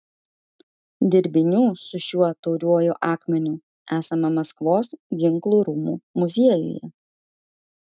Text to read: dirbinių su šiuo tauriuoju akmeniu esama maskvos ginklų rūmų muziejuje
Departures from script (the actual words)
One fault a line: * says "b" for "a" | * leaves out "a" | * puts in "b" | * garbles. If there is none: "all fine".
all fine